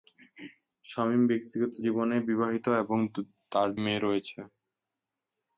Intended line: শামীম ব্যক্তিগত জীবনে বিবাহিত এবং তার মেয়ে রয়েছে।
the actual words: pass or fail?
pass